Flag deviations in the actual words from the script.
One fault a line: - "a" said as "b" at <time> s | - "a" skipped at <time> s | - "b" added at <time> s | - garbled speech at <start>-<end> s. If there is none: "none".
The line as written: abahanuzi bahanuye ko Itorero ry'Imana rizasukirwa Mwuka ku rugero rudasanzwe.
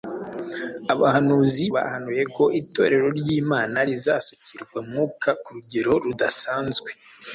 none